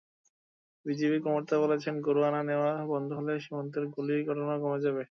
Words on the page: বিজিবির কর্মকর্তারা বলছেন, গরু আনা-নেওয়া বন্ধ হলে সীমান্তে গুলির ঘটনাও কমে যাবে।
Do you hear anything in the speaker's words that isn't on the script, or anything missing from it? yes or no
no